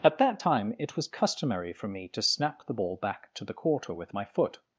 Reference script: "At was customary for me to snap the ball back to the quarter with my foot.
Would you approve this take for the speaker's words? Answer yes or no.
no